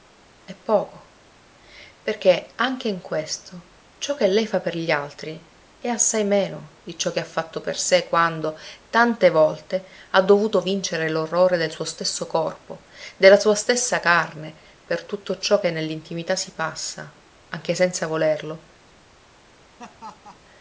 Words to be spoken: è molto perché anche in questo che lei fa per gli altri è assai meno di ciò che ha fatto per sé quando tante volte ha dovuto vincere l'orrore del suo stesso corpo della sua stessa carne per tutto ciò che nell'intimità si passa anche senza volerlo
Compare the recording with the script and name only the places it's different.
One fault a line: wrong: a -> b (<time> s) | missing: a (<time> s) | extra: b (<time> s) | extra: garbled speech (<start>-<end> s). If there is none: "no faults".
wrong: molto -> poco (0.6 s)
extra: ciò (4.0 s)